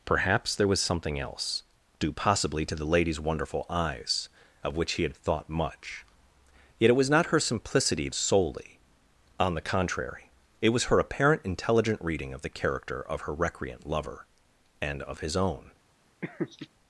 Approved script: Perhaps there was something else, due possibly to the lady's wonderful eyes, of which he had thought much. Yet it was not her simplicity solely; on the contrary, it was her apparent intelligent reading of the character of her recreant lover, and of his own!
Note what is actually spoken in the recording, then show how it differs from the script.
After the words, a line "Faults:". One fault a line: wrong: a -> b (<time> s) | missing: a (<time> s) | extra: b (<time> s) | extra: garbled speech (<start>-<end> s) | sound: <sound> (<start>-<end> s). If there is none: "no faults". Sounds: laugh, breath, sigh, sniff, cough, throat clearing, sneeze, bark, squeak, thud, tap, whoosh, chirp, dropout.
Perhaps there was something else, due possibly to the lady's wonderful eyes, of which he had thought much. Yet it was not her simplicity solely; on the contrary, it was her apparent intelligent reading of the character of her recreant lover, and of his own!
Faults:
sound: laugh (16.2-16.7 s)